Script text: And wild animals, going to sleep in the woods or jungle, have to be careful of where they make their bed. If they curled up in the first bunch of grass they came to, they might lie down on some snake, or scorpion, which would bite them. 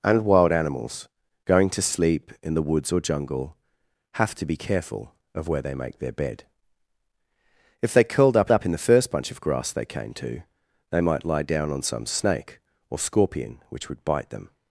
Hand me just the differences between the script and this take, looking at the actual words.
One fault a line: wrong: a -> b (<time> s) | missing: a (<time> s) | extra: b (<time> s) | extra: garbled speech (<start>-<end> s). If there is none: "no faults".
extra: up (8.5 s)